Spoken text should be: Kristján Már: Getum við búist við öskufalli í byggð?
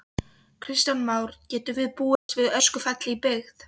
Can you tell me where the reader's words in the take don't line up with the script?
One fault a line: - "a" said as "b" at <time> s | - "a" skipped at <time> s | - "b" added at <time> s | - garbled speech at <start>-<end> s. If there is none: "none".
none